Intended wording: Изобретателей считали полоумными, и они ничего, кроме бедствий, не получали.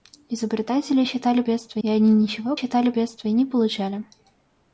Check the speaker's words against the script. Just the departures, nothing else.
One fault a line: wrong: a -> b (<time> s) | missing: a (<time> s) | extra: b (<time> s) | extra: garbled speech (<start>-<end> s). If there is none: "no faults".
wrong: полоумными -> бедствий (1.4 s)
wrong: кроме -> считали (2.5 s)